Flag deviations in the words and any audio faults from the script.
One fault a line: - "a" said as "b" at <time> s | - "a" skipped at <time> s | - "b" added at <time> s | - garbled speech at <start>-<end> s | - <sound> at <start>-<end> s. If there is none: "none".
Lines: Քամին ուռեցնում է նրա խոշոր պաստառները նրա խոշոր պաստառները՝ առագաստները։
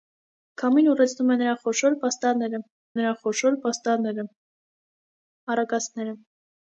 none